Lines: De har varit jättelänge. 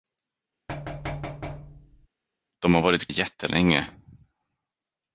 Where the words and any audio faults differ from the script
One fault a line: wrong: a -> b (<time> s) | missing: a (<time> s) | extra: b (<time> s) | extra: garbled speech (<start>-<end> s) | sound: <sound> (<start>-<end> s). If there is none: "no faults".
sound: thud (0.7-2.1 s)